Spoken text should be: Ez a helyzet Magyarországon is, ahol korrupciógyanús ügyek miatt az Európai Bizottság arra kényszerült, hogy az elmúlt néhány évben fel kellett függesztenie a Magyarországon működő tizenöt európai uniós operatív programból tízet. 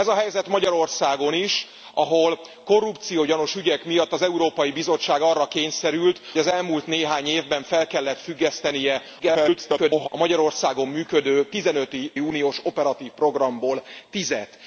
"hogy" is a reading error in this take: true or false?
true